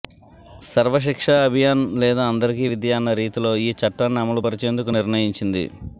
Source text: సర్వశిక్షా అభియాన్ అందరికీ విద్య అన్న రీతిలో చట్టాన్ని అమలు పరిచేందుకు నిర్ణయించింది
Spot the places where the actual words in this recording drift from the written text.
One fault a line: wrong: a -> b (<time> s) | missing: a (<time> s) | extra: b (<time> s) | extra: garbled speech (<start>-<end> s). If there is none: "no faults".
extra: లేదా (2.0 s)
extra: ఈ (3.6 s)